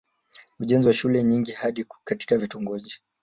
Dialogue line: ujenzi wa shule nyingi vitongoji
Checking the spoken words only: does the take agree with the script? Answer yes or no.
no